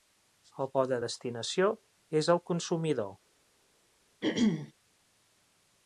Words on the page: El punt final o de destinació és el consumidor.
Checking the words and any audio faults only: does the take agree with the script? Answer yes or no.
no